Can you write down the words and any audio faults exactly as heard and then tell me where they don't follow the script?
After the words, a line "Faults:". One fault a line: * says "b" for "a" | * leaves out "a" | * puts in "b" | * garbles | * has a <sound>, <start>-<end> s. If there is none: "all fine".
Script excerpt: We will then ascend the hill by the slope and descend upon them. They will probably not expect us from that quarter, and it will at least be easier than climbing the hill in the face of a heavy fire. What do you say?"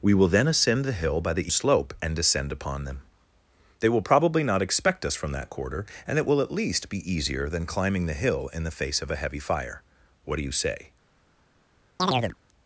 We will then ascend the hill by the slope and descend upon them. They will probably not expect us from that quarter, and it will at least be easier than climbing the hill in the face of a heavy fire. What do you say?"
Faults:
* has a chirp, 12.0-12.4 s